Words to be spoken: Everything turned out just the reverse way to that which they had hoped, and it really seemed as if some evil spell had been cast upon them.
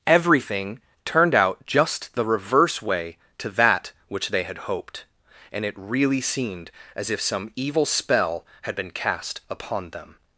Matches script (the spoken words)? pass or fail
pass